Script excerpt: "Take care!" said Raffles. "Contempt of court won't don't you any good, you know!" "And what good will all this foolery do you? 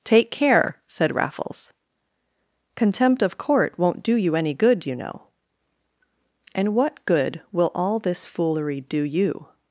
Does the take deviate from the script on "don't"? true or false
true